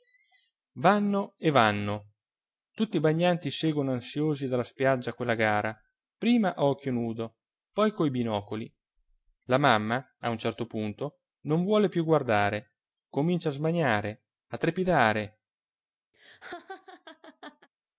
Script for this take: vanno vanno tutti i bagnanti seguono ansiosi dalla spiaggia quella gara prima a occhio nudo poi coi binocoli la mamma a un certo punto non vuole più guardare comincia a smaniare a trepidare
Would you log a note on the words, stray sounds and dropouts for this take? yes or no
yes